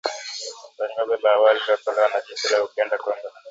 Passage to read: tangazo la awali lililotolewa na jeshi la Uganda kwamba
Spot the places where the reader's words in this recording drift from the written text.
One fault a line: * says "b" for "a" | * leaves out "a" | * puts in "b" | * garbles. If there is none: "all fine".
all fine